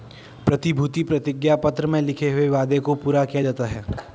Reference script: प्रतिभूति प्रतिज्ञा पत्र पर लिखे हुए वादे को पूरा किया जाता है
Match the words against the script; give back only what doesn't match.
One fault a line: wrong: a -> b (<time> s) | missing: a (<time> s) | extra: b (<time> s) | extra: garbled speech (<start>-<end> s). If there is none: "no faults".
wrong: पर -> में (1.9 s)